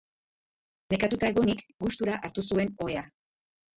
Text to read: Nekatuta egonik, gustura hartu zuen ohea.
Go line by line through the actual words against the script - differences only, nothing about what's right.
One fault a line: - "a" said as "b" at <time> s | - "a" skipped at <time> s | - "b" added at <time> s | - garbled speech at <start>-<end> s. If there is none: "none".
none